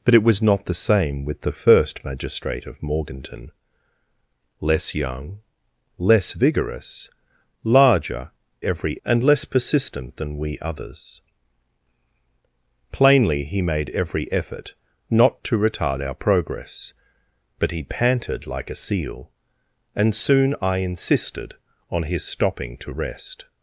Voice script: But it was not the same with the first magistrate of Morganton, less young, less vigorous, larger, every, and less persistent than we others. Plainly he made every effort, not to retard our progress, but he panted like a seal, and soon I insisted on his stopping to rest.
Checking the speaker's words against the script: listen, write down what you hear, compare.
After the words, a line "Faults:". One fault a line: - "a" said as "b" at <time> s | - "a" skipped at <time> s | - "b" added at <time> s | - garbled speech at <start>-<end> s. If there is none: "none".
But it was not the same with the first magistrate of Morganton, less young, less vigorous, larger, every, and less persistent than we others. Plainly he made every effort, not to retard our progress, but he panted like a seal, and soon I insisted on his stopping to rest.
Faults:
none